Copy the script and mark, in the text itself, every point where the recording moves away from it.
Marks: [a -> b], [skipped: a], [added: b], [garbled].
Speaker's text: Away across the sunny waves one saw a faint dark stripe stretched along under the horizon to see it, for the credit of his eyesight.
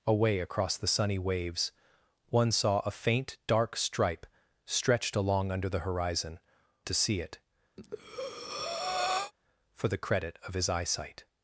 Away across the sunny waves one saw a faint dark stripe stretched along under the horizon to see it, for the credit of his eyesight.